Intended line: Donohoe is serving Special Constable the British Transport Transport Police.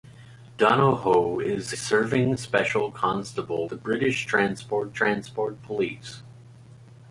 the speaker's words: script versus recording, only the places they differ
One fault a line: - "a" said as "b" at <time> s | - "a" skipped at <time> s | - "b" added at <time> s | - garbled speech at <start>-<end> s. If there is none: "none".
none